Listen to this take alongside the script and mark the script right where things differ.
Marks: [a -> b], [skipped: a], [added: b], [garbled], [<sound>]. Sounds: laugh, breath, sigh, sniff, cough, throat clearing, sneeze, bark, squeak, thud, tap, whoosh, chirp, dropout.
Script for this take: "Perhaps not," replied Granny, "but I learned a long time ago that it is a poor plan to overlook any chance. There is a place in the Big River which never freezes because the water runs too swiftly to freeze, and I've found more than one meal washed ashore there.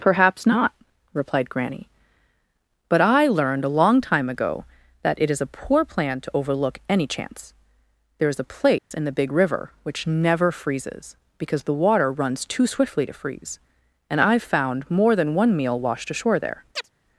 "Perhaps not," replied Granny, "but I learned a long time ago that it is a poor plan to overlook any chance. There is a place [dropout] in the Big River which never freezes because the water runs too swiftly to freeze, and I've found more than one meal washed ashore there. [chirp]